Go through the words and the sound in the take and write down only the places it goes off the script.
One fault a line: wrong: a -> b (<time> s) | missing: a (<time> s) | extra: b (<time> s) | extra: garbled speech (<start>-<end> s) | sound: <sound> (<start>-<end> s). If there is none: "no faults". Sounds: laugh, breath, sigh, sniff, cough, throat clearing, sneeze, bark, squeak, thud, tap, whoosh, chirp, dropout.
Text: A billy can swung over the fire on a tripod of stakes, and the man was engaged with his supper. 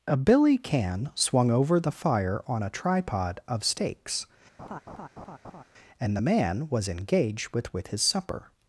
sound: laugh (4.6-5.6 s)
extra: with (7.7 s)